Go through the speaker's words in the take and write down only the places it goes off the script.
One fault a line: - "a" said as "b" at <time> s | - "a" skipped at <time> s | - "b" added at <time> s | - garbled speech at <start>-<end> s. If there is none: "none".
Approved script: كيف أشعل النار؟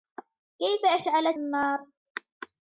none